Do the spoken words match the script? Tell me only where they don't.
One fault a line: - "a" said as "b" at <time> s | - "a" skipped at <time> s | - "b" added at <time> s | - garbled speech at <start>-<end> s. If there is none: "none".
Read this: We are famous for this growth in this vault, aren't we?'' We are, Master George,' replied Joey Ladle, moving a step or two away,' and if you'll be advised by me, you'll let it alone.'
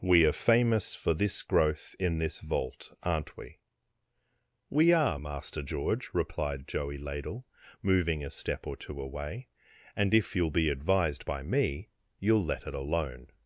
none